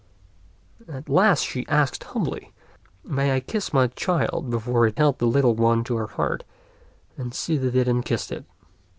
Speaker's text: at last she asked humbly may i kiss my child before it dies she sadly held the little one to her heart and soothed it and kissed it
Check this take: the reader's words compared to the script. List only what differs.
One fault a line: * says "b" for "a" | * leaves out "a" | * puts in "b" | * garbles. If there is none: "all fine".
* leaves out "dies she sadly"